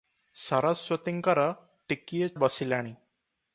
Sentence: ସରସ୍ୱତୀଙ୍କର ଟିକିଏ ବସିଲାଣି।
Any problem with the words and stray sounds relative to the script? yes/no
no